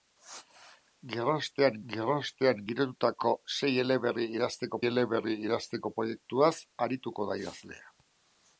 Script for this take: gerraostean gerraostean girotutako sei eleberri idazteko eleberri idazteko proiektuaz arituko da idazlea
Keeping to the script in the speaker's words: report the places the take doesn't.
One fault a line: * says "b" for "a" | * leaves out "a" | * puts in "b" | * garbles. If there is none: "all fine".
all fine